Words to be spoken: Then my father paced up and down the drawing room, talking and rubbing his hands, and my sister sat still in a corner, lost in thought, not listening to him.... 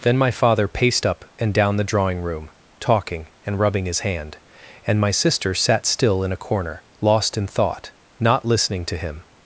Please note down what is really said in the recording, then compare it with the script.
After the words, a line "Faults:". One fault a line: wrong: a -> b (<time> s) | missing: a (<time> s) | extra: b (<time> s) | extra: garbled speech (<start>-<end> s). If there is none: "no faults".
Then my father paced up and down the drawing room, talking and rubbing his hand, and my sister sat still in a corner, lost in thought, not listening to him....
Faults:
wrong: hands -> hand (4.0 s)